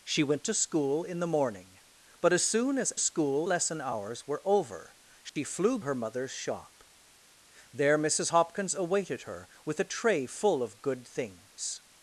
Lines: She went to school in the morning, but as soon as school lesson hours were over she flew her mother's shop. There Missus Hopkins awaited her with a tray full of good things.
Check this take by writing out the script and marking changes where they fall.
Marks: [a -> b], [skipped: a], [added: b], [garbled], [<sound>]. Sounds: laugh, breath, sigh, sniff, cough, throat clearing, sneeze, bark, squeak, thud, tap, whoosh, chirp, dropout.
She went to school in the morning, but as soon as school lesson hours were over she [dropout] flew her mother's shop. There Missus Hopkins awaited her with a tray full of good things.